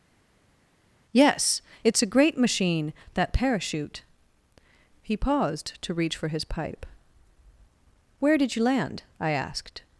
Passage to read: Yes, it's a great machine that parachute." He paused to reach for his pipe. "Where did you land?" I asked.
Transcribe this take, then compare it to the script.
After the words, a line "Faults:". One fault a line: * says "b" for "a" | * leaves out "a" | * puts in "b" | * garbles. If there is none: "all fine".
Yes, it's a great machine that parachute." He paused to reach for his pipe. "Where did you land?" I asked.
Faults:
all fine